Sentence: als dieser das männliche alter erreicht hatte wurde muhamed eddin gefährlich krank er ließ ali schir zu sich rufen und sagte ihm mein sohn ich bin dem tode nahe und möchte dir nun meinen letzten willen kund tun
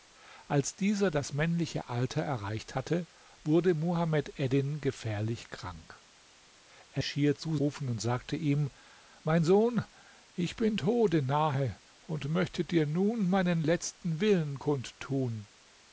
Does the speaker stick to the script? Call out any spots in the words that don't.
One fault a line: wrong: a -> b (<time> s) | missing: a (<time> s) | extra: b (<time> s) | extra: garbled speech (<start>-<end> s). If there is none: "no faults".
missing: ließ ali (7.0 s)
missing: sich (7.6 s)
missing: dem (10.8 s)